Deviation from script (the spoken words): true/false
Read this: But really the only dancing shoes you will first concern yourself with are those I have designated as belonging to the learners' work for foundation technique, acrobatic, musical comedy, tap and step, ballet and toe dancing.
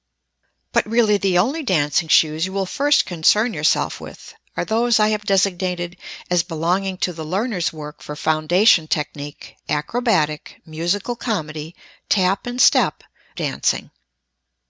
true